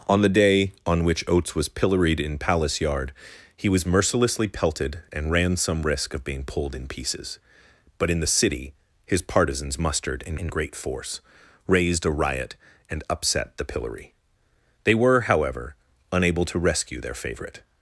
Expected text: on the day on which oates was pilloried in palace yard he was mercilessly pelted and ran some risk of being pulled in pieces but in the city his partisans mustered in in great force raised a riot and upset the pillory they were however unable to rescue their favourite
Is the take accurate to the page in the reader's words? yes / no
yes